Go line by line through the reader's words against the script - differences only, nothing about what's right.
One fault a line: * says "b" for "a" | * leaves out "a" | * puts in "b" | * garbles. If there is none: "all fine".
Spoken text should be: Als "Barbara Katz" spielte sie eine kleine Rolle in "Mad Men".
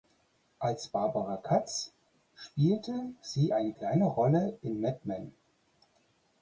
all fine